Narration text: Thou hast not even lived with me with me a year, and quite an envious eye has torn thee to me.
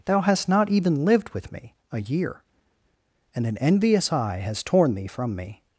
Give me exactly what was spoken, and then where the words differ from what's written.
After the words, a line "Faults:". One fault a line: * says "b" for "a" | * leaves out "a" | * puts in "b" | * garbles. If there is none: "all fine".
Thou hast not even lived with me a year, and an envious eye has torn thee from me.
Faults:
* leaves out "with me"
* leaves out "quite"
* says "from" for "to"